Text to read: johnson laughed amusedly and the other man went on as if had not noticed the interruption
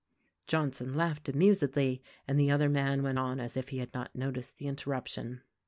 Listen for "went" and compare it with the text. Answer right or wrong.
right